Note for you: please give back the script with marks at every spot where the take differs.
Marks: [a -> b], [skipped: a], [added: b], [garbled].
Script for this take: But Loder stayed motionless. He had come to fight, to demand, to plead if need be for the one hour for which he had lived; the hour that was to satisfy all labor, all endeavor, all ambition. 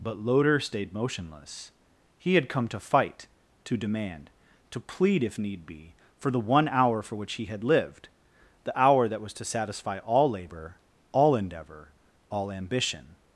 But Loder stayed motionless. He had come to fight, to demand, to plead if need be for the one hour for which he had lived; the hour that was to satisfy all labor, all endeavor, all ambition.